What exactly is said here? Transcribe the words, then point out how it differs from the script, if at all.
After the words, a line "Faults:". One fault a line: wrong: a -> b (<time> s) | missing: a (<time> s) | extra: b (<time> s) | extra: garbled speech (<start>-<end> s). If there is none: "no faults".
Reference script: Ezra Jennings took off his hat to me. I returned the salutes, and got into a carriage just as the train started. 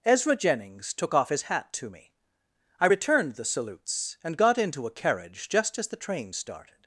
Ezra Jennings took off his hat to me. I returned the salutes, and got into a carriage just as the train started.
Faults:
no faults